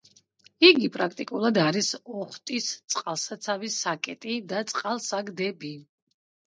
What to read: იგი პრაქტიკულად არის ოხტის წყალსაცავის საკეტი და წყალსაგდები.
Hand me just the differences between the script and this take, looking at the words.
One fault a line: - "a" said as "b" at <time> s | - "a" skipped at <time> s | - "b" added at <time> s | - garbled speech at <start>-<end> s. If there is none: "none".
none